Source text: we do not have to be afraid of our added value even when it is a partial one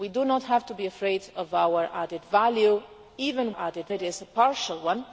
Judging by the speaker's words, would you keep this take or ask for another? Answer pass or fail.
fail